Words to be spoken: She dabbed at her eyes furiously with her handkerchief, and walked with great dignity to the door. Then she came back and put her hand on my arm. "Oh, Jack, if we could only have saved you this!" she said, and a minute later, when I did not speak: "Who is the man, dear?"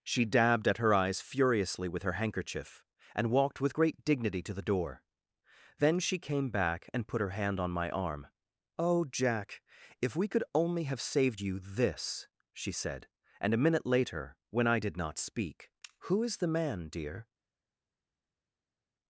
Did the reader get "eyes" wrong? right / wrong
right